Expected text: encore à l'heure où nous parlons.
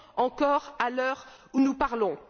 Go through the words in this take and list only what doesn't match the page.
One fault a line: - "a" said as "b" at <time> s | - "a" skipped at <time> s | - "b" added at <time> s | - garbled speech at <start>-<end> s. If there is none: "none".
none